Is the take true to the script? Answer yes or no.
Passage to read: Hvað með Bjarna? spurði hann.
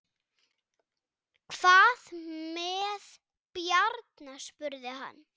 yes